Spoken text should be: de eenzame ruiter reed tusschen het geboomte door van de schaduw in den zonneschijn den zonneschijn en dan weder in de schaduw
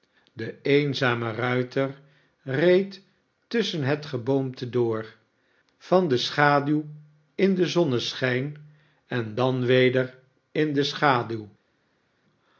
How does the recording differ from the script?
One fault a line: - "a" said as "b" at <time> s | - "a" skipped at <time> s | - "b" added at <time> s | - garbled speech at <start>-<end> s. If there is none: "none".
- "den zonneschijn" skipped at 8.7 s